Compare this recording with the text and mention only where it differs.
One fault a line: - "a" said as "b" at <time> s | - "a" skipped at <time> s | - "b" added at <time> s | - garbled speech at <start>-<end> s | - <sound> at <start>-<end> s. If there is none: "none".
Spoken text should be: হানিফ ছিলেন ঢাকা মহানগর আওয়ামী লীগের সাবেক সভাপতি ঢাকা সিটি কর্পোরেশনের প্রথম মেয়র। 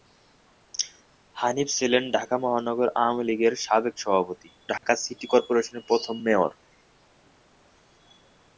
- dropout at 4.8-4.8 s